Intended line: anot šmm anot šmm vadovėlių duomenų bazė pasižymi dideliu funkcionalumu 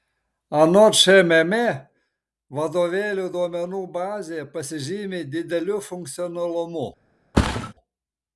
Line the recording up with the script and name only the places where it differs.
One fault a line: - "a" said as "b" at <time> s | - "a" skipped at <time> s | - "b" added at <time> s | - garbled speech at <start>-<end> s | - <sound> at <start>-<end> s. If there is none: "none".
- "anot šmm" skipped at 1.5 s
- thud at 7.3-7.7 s